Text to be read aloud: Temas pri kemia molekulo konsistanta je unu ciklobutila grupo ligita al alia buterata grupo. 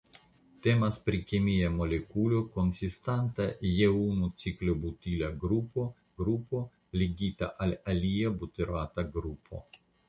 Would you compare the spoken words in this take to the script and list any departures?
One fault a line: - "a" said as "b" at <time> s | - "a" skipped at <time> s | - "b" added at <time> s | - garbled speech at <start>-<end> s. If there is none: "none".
- "grupo" added at 6.2 s